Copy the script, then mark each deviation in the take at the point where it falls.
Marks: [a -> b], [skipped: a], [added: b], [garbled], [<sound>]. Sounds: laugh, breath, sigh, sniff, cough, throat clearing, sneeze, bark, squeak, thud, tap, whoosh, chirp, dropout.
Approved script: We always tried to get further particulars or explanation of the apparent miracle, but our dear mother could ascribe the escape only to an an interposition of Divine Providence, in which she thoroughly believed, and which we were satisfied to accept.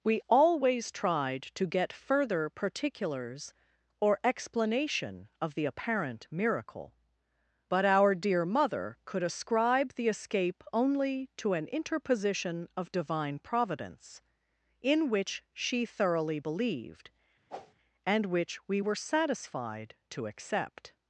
We always tried to get further particulars or explanation of the apparent miracle, but our dear mother could ascribe the escape only to an [skipped: an] interposition of Divine Providence, in which she thoroughly believed, [whoosh] and which we were satisfied to accept.